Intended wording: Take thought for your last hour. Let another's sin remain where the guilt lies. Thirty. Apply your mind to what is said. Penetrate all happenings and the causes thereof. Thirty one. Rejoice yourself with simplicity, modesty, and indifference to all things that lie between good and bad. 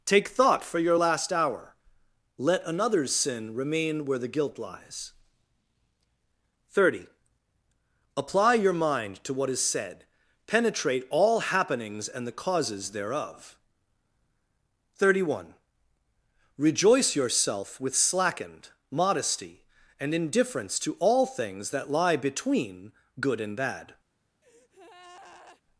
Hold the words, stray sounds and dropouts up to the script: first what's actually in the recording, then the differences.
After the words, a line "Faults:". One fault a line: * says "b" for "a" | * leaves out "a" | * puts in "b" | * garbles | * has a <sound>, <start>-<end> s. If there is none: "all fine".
Take thought for your last hour. Let another's sin remain where the guilt lies. Thirty. Apply your mind to what is said. Penetrate all happenings and the causes thereof. Thirty one. Rejoice yourself with slackened, modesty, and indifference to all things that lie between good and bad.
Faults:
* says "slackened" for "simplicity"
* has a breath, 24.4-25.6 s